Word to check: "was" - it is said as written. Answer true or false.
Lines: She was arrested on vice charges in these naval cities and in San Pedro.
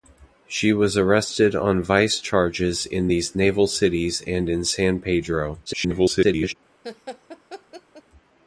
true